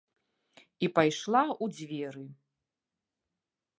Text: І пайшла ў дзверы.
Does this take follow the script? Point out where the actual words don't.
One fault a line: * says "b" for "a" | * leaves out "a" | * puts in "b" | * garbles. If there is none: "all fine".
all fine